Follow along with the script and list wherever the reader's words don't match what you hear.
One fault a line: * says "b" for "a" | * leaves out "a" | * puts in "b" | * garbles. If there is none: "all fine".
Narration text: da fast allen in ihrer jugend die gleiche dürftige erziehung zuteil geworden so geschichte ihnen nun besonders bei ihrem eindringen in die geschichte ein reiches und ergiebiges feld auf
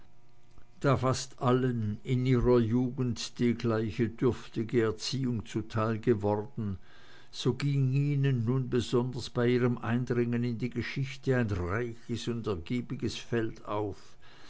* says "ging" for "geschichte"